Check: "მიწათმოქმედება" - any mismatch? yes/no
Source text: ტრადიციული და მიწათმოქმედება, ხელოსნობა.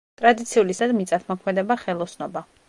no